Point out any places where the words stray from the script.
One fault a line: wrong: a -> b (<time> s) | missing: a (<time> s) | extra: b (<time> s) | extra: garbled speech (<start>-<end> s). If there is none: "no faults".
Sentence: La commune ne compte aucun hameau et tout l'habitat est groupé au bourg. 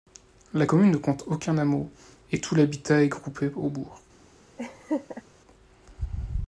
no faults